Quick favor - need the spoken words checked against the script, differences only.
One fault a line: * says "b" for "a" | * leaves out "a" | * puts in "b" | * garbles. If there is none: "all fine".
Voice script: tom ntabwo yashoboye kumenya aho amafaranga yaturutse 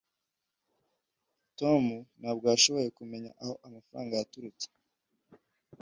all fine